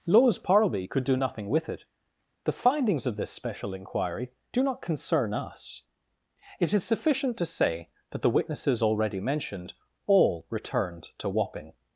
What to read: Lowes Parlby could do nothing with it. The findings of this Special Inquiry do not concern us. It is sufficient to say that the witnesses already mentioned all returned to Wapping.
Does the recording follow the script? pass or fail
pass